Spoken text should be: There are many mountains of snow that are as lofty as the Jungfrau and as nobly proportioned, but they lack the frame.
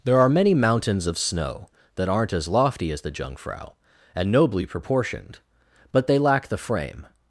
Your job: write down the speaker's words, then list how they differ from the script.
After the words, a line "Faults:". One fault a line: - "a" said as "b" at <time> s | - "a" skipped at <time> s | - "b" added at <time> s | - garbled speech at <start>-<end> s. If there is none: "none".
There are many mountains of snow that aren't as lofty as the Jungfrau and nobly proportioned, but they lack the frame.
Faults:
- "are" said as "aren't" at 2.1 s
- "as" skipped at 4.3 s